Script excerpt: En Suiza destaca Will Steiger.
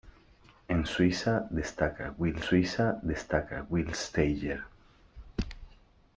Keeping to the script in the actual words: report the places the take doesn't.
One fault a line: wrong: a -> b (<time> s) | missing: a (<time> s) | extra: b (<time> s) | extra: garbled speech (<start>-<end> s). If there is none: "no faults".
extra: Suiza destaca Will (2.4 s)